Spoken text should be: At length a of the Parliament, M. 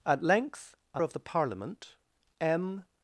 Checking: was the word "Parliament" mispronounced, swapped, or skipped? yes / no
no